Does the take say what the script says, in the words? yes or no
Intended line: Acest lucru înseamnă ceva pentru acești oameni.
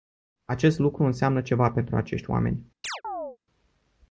yes